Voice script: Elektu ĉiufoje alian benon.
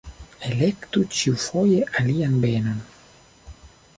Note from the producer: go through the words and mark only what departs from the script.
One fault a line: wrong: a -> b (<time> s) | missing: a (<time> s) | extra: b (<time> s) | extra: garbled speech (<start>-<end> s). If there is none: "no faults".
no faults